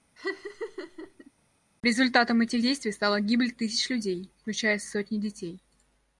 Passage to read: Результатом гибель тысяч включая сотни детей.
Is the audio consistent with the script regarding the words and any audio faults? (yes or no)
no